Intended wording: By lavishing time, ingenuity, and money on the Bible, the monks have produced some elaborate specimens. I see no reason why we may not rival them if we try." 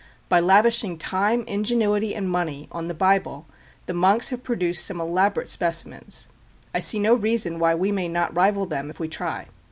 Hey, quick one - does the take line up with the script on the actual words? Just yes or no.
yes